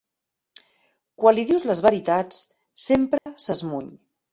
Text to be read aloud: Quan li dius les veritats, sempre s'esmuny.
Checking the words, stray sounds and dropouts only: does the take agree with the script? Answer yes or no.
no